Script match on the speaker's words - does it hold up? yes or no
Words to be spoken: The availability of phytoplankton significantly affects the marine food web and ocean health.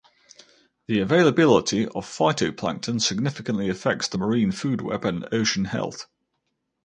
yes